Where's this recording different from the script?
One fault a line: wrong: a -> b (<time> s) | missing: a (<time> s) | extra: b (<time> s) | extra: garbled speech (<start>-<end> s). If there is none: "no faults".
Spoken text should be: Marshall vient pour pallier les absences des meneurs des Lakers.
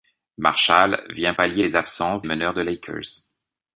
missing: pour (1.4 s)
missing: des (2.2 s)